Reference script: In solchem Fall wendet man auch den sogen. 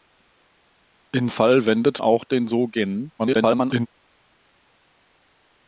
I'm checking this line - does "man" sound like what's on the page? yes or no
no